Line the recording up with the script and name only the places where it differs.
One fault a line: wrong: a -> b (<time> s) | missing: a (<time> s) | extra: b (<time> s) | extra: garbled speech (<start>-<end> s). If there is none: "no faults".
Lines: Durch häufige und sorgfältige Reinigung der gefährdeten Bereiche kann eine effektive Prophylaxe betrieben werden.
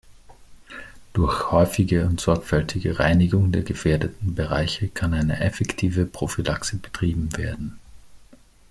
no faults